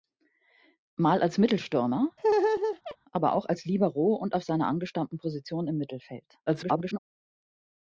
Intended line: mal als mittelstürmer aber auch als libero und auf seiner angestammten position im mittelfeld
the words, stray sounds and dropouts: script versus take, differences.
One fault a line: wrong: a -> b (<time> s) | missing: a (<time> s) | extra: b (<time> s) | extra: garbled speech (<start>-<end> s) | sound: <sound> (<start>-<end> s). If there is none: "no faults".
sound: laugh (2.2-3.0 s)
extra: garbled speech (6.5-7.0 s)